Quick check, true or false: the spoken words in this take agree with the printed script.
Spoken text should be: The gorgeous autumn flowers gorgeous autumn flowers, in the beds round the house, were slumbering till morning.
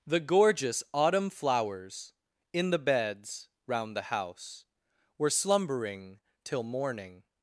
false